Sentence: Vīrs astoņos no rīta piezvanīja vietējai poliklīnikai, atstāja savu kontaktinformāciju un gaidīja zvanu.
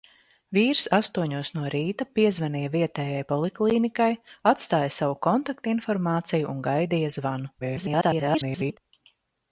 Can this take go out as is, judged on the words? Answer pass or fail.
fail